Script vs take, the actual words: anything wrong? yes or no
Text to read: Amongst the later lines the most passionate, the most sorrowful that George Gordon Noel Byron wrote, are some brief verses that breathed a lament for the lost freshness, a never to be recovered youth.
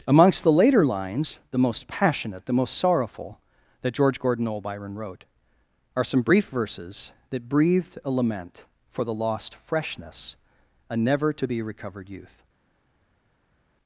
no